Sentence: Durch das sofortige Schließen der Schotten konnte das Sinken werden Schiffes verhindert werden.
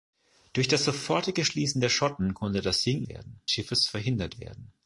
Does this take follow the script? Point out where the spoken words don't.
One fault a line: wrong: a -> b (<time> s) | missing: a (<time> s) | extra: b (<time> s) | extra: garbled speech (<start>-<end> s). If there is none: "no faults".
no faults